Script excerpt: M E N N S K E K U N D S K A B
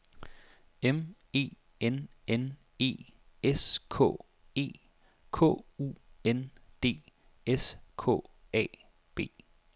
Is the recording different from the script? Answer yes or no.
yes